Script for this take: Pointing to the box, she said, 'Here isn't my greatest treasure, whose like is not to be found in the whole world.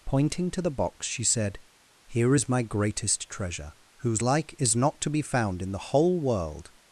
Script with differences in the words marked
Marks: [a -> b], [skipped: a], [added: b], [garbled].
Pointing to the box, she said, 'Here [isn't -> is] my greatest treasure, whose like is not to be found in the whole world.